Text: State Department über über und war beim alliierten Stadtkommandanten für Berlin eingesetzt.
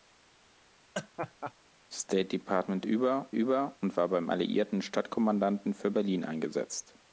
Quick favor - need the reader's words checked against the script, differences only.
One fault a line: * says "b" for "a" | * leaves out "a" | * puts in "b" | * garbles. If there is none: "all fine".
all fine